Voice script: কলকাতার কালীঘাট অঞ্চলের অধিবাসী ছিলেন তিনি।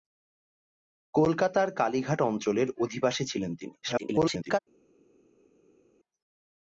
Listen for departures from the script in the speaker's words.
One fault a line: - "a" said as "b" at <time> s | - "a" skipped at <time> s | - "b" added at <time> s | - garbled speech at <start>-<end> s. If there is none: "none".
- garbled speech at 3.8-4.6 s